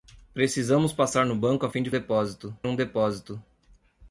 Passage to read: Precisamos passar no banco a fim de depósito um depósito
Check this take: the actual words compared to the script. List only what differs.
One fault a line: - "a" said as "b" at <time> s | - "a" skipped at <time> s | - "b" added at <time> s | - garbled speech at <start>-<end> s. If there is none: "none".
none